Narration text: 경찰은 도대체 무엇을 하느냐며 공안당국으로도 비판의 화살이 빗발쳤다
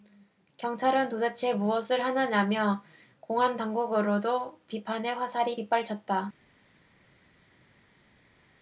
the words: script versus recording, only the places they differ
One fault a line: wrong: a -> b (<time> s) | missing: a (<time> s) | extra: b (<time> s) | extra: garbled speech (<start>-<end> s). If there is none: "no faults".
no faults